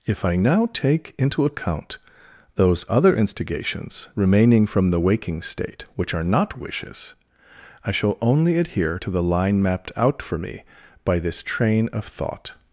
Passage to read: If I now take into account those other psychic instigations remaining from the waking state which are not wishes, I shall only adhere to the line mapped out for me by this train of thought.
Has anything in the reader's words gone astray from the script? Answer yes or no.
yes